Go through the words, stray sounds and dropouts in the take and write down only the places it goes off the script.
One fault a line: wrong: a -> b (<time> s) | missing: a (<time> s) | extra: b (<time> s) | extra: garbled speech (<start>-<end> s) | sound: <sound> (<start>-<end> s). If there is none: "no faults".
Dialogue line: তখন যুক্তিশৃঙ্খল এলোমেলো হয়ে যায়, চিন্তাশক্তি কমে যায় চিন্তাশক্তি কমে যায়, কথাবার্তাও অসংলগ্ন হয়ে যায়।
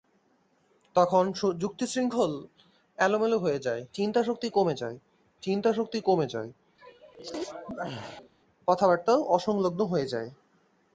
sound: sneeze (6.8-8.3 s)